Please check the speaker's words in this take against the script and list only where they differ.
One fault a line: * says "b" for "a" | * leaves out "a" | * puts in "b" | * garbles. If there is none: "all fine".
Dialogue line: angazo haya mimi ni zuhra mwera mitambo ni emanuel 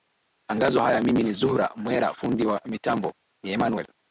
* puts in "fundi wa"